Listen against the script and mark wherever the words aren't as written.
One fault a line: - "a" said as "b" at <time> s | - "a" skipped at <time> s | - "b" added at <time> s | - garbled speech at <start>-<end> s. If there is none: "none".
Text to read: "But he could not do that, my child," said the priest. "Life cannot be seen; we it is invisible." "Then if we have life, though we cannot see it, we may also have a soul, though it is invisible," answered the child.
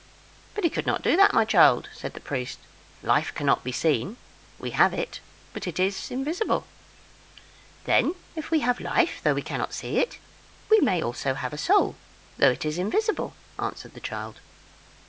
- "have it but" added at 4.7 s